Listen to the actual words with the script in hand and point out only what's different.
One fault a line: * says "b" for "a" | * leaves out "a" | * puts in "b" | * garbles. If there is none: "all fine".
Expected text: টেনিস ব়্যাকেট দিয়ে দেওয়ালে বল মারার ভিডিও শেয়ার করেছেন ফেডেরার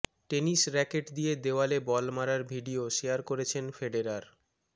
all fine